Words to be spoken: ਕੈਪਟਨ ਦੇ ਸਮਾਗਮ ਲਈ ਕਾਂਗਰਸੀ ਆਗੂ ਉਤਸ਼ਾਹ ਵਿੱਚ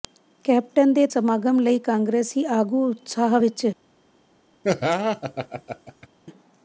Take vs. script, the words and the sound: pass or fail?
fail